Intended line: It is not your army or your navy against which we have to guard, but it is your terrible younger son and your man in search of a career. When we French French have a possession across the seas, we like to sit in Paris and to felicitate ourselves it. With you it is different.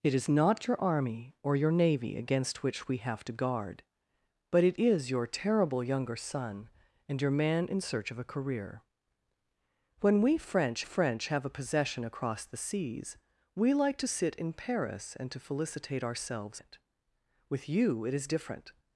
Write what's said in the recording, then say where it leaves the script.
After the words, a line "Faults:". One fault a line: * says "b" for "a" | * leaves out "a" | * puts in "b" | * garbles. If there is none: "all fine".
It is not your army or your navy against which we have to guard, but it is your terrible younger son and your man in search of a career. When we French French have a possession across the seas, we like to sit in Paris and to felicitate ourselves it. With you it is different.
Faults:
all fine